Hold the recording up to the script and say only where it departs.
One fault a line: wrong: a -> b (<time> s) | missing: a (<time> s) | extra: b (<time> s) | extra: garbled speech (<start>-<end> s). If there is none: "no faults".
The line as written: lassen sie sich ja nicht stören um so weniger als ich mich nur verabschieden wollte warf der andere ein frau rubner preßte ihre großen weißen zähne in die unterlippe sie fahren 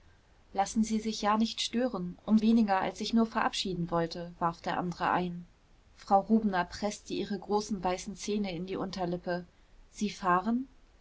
missing: so (2.4 s)
missing: mich (3.1 s)